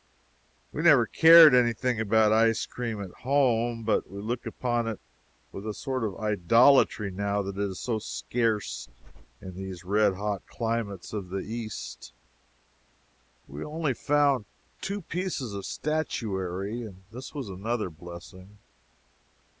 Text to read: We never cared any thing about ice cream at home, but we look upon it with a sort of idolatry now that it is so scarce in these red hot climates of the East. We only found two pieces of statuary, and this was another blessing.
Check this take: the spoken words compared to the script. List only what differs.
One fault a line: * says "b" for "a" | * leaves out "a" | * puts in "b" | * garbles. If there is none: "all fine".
all fine